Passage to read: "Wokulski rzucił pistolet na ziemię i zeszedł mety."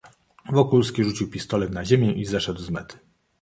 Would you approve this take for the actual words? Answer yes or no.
no